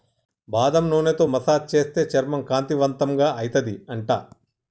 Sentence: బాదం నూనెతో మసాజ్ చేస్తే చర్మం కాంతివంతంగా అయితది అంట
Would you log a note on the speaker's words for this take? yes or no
no